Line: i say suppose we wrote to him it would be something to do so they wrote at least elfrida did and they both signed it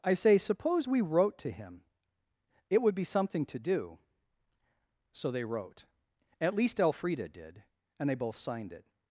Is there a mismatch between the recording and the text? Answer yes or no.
no